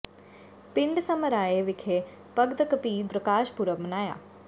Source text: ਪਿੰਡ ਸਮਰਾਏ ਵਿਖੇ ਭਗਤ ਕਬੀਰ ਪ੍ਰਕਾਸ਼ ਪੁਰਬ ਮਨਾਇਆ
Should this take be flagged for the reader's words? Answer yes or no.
no